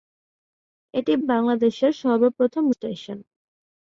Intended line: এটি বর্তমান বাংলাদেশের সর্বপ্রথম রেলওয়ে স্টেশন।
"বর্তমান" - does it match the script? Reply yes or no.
no